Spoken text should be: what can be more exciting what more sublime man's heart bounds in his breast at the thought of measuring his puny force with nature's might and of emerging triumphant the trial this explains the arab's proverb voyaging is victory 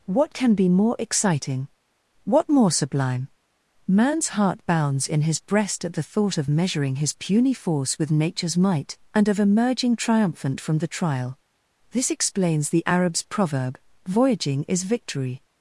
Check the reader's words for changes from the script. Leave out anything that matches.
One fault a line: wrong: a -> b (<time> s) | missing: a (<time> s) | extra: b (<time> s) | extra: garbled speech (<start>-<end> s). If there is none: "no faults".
extra: from (10.6 s)